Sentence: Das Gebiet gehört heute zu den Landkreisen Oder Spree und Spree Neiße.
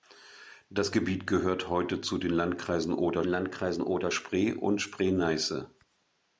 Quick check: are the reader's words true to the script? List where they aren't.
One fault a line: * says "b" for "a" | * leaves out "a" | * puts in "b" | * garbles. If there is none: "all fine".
* puts in "Landkreisen Oder"